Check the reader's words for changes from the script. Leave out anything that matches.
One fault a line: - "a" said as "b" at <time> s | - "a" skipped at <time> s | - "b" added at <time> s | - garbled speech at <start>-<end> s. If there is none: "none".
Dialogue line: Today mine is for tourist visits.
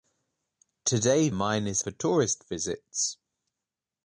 none